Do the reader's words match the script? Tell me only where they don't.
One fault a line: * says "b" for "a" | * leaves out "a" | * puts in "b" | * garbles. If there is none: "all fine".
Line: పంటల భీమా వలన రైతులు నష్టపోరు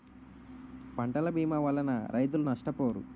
all fine